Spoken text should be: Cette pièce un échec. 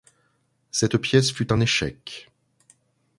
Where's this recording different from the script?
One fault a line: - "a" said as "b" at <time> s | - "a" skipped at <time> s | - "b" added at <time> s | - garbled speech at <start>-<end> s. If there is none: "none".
- "fut" added at 1.3 s